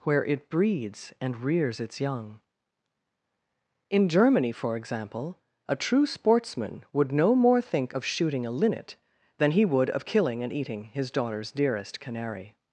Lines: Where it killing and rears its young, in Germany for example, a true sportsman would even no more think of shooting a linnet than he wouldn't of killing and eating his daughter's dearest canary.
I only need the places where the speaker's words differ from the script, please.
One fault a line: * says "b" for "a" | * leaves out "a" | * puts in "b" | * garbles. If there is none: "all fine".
* says "breeds" for "killing"
* leaves out "even"
* says "would" for "wouldn't"